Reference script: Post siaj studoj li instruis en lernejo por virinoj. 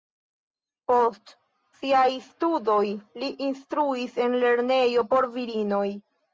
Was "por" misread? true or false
false